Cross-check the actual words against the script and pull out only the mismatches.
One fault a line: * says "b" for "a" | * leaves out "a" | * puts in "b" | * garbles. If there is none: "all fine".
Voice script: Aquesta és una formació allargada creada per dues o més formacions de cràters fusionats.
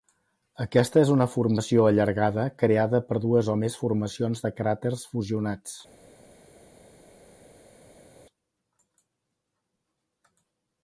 all fine